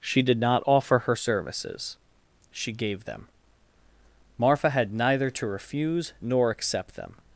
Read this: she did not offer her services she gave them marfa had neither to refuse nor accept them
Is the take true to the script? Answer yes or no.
yes